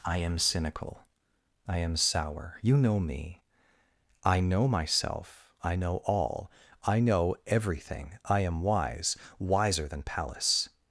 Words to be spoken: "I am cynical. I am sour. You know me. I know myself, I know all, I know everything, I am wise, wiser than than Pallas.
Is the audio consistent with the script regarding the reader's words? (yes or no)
no